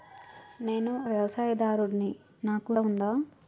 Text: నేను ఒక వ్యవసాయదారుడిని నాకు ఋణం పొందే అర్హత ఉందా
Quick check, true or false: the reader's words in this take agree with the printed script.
false